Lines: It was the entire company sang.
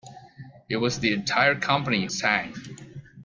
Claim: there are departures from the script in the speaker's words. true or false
false